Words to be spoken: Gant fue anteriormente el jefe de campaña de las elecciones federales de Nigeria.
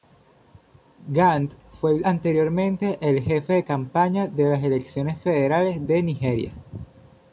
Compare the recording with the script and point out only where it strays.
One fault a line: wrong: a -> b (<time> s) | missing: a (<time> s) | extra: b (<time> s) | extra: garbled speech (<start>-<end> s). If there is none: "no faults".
no faults